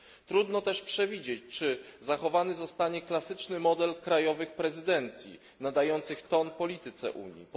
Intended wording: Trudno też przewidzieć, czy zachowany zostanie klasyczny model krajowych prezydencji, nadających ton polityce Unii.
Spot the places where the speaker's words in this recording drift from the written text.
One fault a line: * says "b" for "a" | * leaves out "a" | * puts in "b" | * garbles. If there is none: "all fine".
all fine